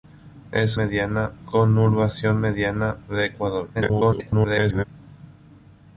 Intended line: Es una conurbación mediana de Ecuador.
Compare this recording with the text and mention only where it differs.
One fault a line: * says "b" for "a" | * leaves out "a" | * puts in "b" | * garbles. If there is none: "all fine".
* says "mediana" for "una"
* garbles